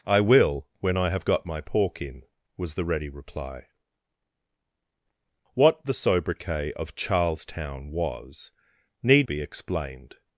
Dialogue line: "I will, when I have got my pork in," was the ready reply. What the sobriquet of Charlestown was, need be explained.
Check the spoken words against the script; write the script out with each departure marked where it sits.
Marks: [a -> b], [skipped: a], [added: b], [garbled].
"I will, when I have got my pork in," was the ready reply. What the sobriquet of Charlestown was, need be explained.